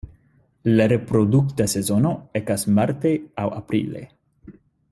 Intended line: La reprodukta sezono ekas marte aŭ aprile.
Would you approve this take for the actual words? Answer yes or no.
yes